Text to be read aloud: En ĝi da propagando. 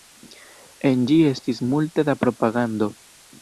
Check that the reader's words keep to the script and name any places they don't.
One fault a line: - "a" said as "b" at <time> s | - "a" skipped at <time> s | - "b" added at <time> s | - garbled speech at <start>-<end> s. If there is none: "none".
- "estis multe" added at 1.3 s